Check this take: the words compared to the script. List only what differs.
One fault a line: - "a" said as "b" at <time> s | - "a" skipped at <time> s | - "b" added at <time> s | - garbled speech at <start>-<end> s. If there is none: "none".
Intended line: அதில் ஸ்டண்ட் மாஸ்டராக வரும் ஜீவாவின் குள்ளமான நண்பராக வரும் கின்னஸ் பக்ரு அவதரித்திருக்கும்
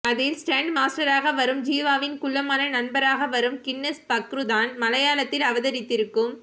- "தான் மலையாளத்தில்" added at 4.4 s